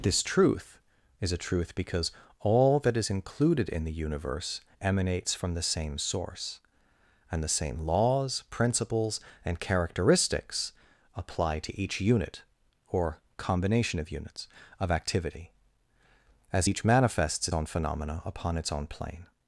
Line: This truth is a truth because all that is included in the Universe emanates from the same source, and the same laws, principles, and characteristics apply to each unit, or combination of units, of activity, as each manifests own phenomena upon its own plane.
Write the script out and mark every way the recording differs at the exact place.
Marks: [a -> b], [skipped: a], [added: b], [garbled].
This truth is a truth because all that is included in the Universe emanates from the same source, and the same laws, principles, and characteristics apply to each unit, or combination of units, of activity, as each manifests own phenomena upon its own plane.